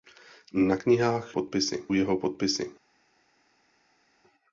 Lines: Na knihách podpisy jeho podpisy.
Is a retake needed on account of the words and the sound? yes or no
no